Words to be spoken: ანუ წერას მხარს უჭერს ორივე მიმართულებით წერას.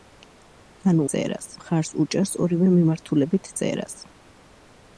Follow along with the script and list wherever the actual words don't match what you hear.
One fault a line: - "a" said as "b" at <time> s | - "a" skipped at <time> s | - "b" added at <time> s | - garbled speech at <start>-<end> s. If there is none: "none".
none